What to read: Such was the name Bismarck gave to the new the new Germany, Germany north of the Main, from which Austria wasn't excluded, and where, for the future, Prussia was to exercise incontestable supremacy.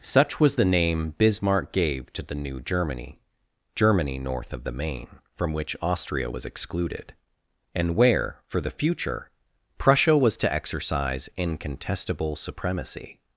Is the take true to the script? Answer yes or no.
no